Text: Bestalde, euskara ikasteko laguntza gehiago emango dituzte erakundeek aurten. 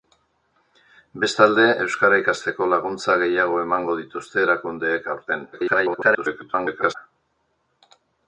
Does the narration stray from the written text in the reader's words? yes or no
yes